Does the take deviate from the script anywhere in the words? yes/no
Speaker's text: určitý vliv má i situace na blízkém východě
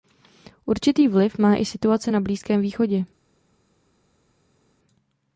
no